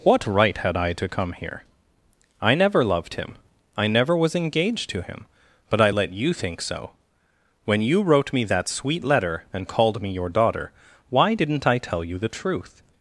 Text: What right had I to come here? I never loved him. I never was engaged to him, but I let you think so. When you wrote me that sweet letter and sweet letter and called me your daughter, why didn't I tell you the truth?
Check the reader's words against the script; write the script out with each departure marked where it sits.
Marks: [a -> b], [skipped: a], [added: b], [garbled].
What right had I to come here? I never loved him. I never was engaged to him, but I let you think so. When you wrote me that sweet letter and [skipped: sweet letter and] called me your daughter, why didn't I tell you the truth?